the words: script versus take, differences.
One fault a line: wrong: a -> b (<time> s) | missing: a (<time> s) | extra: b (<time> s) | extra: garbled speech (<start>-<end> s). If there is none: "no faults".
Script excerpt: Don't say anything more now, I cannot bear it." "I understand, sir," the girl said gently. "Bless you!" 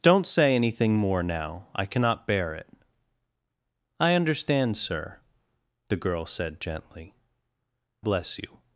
no faults